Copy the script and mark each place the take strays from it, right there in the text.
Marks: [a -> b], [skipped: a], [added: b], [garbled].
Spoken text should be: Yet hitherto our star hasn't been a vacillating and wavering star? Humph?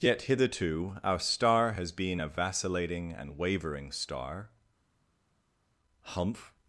Yet hitherto our star [hasn't -> has] been a vacillating and wavering star? Humph?